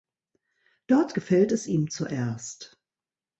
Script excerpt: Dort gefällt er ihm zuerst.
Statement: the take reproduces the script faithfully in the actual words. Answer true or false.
false